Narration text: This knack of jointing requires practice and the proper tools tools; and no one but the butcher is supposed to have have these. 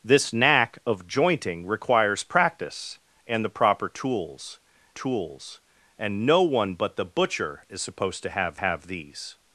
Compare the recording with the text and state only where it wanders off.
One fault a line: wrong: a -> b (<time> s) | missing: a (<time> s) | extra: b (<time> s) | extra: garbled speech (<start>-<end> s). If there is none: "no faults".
no faults